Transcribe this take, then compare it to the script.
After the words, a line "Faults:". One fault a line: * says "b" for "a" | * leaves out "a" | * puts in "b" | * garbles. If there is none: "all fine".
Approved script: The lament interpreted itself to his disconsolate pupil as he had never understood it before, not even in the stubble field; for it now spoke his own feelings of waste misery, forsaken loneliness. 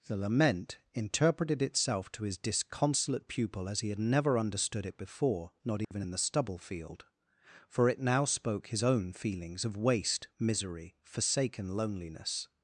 The lament interpreted itself to his disconsolate pupil as he had never understood it before, not even in the stubble field; for it now spoke his own feelings of waste misery, forsaken loneliness.
Faults:
all fine